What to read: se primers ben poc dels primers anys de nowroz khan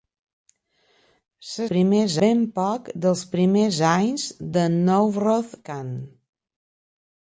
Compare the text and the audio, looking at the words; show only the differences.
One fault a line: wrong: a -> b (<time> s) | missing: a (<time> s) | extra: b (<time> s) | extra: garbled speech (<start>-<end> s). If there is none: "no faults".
no faults